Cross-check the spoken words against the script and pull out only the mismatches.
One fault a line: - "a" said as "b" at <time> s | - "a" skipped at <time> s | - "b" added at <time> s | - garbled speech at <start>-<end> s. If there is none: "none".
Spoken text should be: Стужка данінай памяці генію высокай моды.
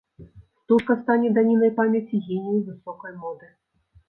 - "стане" added at 1.0 s